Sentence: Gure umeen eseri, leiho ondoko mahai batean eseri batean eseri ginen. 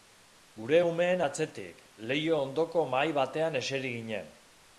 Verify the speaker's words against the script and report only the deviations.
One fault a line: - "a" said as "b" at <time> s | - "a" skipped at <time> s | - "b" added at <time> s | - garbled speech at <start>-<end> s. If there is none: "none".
- "eseri" said as "atzetik" at 1.2 s
- "batean eseri" skipped at 4.0 s